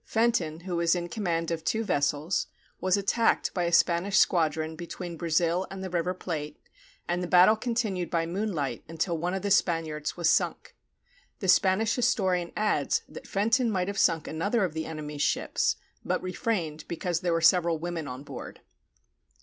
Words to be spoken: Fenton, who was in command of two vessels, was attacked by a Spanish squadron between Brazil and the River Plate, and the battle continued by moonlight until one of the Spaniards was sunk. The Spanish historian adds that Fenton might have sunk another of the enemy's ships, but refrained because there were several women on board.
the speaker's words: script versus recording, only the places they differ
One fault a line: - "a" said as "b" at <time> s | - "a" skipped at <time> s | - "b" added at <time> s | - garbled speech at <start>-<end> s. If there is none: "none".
none